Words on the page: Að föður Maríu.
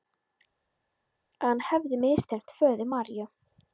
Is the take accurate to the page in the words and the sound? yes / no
no